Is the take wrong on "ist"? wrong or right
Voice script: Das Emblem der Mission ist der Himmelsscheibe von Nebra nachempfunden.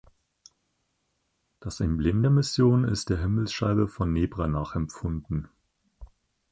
right